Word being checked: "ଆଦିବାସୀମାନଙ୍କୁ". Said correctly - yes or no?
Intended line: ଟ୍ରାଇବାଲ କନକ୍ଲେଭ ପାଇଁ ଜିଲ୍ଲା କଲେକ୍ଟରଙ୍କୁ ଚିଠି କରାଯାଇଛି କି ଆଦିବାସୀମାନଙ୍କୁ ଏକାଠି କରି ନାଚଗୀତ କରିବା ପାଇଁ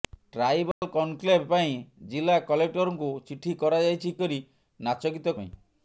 no